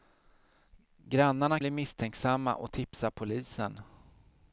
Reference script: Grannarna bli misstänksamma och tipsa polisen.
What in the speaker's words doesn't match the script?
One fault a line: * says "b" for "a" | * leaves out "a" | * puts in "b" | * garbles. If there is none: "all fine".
all fine